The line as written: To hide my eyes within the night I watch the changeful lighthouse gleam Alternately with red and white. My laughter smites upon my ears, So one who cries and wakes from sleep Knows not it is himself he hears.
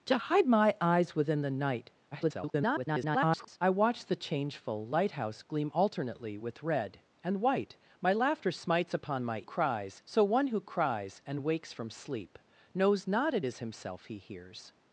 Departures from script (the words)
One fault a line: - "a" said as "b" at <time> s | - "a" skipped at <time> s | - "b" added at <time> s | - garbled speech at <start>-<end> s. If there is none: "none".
- garbled speech at 2.1-3.6 s
- "ears" said as "cries" at 9.4 s